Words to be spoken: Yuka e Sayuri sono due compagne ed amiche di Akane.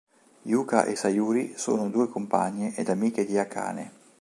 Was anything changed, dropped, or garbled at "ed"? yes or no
no